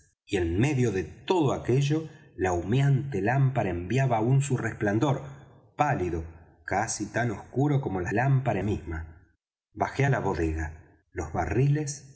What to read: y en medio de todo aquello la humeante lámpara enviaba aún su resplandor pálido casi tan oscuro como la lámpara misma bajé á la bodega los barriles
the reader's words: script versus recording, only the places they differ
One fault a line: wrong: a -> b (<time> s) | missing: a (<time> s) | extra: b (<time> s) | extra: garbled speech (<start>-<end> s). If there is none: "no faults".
no faults